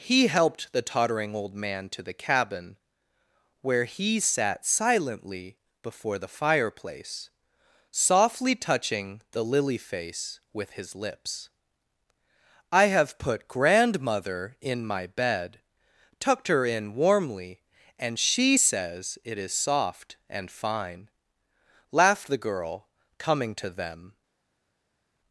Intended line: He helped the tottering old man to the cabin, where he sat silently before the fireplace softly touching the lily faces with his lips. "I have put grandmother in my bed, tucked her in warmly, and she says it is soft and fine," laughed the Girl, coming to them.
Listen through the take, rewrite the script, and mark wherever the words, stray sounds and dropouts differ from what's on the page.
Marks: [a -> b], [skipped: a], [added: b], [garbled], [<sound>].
He helped the tottering old man to the cabin, where he sat silently before the fireplace softly touching the lily [faces -> face] with his lips. "I have put grandmother in my bed, tucked her in warmly, and she says it is soft and fine," laughed the Girl, coming to them.